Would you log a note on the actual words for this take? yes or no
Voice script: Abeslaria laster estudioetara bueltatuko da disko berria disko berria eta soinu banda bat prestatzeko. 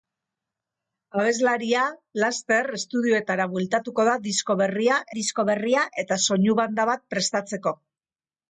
no